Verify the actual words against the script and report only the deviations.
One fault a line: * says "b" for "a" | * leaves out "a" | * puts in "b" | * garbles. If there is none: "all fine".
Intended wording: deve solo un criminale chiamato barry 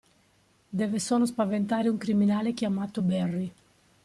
* puts in "spaventare"